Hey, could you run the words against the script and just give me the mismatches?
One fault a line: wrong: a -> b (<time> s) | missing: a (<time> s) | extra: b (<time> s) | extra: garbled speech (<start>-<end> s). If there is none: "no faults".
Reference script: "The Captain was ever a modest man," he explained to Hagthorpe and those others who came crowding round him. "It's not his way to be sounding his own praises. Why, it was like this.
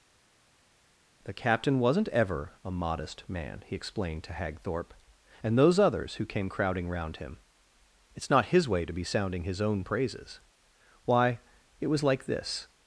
wrong: was -> wasn't (1.8 s)